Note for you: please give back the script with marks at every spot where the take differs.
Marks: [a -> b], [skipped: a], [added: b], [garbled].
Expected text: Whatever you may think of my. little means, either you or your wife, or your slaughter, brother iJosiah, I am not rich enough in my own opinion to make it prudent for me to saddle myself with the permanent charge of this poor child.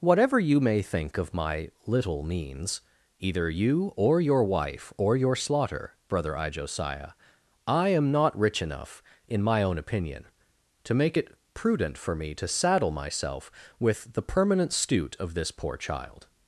Whatever you may think of my. little means, either you or your wife, or your slaughter, brother iJosiah, I am not rich enough in my own opinion to make it prudent for me to saddle myself with the permanent [charge -> stoot] of this poor child.